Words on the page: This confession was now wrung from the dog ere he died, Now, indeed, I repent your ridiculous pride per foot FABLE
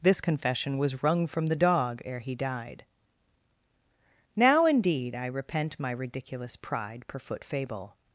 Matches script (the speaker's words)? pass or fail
fail